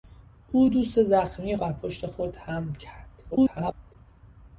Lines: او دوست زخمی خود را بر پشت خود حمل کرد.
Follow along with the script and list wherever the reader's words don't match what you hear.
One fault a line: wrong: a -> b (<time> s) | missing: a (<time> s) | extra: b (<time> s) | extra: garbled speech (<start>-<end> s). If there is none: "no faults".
missing: خود را (1.6 s)
extra: garbled speech (3.3-4.0 s)